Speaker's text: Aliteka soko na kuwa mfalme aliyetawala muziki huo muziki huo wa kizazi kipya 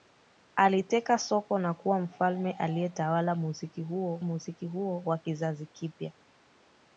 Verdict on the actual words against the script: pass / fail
pass